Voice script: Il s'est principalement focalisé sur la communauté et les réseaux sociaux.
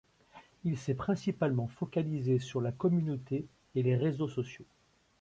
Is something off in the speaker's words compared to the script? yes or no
no